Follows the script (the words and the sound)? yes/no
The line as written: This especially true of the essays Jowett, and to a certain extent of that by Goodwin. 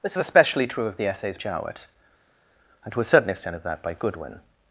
yes